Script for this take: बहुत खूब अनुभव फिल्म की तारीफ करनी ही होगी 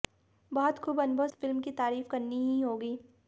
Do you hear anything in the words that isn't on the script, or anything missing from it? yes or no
no